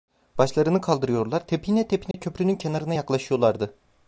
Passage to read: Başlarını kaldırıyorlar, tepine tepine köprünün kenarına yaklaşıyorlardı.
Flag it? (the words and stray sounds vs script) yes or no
yes